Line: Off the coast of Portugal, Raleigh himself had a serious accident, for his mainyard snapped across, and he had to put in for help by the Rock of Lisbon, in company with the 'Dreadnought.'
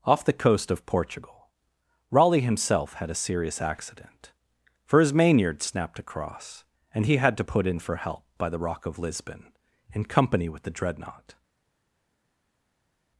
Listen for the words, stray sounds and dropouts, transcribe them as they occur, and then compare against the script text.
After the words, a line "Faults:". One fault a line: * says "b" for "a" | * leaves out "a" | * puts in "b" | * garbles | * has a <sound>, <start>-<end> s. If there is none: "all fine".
Off the coast of Portugal, Raleigh himself had a serious accident, for his mainyard snapped across, and he had to put in for help by the Rock of Lisbon, in company with the 'Dreadnought.'
Faults:
all fine